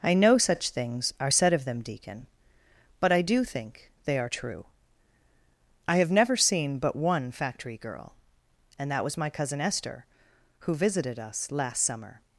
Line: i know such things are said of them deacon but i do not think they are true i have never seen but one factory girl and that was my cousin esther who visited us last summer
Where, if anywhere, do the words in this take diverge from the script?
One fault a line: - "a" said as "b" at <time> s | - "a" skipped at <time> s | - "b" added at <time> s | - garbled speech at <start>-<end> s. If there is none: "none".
- "not" skipped at 3.4 s